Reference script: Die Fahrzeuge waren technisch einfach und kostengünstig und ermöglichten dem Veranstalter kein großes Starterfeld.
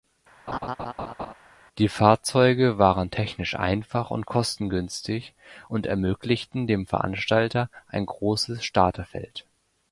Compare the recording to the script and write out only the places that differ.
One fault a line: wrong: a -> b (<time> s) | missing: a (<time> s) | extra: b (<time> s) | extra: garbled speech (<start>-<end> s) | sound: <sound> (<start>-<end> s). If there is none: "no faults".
sound: laugh (0.5-1.3 s)
wrong: kein -> ein (7.9 s)